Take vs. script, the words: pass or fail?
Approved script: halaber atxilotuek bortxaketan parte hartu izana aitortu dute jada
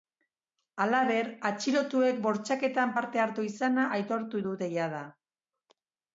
pass